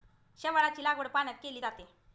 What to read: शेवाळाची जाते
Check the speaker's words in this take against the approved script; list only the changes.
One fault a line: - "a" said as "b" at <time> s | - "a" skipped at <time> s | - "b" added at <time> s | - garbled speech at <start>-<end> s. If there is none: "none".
- "लागवड पाण्यात केली" added at 0.8 s